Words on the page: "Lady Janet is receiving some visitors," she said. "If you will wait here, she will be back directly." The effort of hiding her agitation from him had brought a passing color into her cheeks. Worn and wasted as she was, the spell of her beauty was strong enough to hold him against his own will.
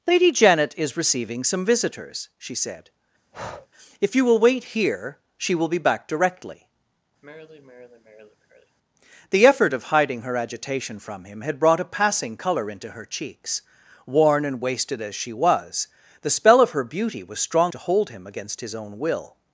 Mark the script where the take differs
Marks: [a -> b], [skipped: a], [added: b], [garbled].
"Lady Janet is receiving some visitors," she said. "If you will wait here, she will be back directly." The effort of hiding her agitation from him had brought a passing color into her cheeks. Worn and wasted as she was, the spell of her beauty was strong [skipped: enough] to hold him against his own will.